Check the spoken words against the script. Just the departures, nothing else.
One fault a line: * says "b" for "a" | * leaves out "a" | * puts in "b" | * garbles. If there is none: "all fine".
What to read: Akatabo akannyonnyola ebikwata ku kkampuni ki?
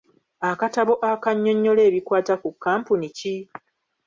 all fine